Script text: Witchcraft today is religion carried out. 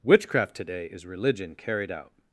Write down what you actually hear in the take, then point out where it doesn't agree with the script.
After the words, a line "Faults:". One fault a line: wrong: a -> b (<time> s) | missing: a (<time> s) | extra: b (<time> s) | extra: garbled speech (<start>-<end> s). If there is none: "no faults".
Witchcraft today is religion carried out.
Faults:
no faults